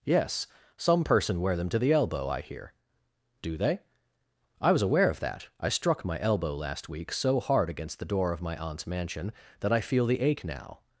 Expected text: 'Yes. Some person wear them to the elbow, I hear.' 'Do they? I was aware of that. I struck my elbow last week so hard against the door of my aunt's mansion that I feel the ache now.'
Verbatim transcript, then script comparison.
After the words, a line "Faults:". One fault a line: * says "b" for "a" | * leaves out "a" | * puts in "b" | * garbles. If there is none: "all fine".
'Yes. Some person wear them to the elbow, I hear.' 'Do they? I was aware of that. I struck my elbow last week so hard against the door of my aunt's mansion that I feel the ache now.'
Faults:
all fine